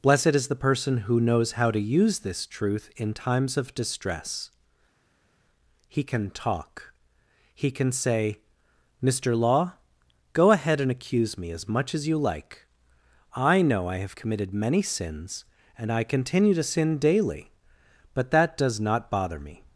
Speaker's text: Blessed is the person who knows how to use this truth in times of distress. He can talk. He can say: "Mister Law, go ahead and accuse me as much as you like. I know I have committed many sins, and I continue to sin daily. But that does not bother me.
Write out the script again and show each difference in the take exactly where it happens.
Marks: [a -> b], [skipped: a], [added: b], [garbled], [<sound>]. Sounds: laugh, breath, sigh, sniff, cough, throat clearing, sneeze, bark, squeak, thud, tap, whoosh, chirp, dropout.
Blessed is the person who knows how to use this truth in times of distress. He can talk. He can say: "Mister Law, go ahead and accuse me as much as you like. I know I have committed many sins, and I continue to sin daily. But that does not bother me.